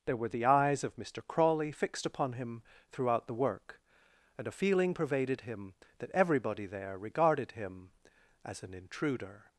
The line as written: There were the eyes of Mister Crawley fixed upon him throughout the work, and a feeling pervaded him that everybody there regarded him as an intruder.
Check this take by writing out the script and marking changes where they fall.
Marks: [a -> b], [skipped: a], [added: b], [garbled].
There were the eyes of Mister Crawley fixed upon him throughout the work, and a feeling pervaded him that everybody there regarded him as an intruder.